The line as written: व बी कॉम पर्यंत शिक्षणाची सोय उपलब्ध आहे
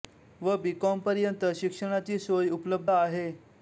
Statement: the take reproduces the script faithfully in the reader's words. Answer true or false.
true